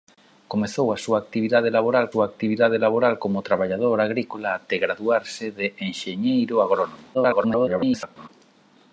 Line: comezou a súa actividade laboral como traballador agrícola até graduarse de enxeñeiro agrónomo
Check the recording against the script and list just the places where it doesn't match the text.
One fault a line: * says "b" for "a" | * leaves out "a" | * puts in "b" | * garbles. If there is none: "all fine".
* puts in "súa actividade laboral"
* garbles